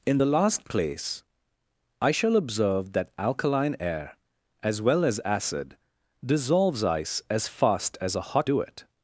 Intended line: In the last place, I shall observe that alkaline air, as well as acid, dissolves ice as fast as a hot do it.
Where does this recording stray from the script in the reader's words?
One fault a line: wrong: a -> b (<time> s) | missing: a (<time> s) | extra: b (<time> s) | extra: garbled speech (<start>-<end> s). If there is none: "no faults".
no faults